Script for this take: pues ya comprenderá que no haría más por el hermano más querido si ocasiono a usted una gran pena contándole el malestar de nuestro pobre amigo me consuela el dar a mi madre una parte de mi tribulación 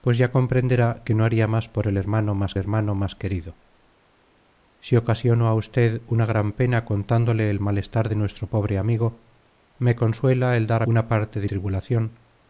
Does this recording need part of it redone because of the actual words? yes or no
yes